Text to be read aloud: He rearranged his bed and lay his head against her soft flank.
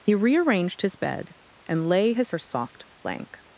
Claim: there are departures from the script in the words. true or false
true